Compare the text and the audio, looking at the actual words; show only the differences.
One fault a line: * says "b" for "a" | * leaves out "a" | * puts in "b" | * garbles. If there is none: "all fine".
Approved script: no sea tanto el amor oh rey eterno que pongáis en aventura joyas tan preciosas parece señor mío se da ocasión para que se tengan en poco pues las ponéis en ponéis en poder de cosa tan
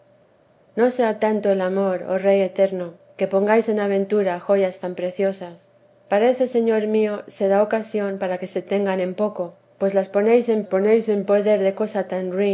all fine